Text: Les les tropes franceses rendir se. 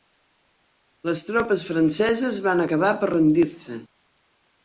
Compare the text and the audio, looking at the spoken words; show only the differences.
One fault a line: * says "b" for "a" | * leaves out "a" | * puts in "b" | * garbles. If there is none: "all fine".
* leaves out "les"
* puts in "van acabar per"